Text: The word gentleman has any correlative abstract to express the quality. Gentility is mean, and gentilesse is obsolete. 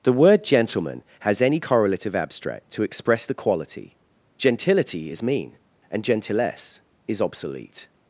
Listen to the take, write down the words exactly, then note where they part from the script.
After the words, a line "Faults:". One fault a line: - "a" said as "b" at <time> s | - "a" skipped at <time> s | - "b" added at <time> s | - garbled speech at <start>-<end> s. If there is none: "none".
The word gentleman has any correlative abstract to express the quality. Gentility is mean, and gentilesse is obsolete.
Faults:
none